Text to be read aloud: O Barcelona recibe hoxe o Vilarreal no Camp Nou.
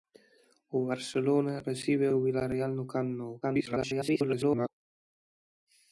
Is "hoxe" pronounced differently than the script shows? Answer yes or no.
yes